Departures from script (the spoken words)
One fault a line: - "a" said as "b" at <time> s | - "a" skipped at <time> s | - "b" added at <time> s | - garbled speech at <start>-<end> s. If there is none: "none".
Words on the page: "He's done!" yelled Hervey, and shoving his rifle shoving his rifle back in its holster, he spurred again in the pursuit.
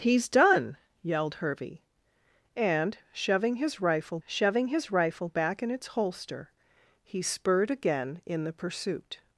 none